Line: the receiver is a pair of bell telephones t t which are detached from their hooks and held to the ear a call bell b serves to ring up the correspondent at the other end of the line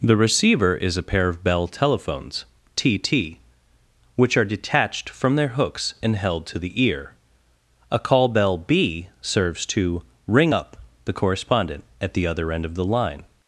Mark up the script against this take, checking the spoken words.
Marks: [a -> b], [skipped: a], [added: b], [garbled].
the receiver is a pair of bell telephones t t which are detached from their hooks and held to the ear a call bell b serves to ring up the correspondent at the other end of the line